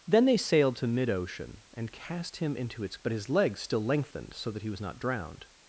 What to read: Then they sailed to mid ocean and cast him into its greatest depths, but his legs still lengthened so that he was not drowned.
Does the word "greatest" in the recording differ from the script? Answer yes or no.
yes